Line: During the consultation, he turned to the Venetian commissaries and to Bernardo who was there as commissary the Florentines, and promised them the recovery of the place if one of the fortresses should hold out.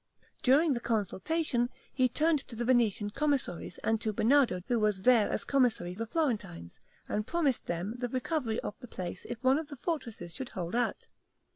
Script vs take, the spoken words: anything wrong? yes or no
no